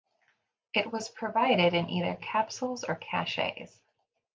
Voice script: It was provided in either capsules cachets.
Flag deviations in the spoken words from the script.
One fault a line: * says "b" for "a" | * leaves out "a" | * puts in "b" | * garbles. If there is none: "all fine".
* puts in "or"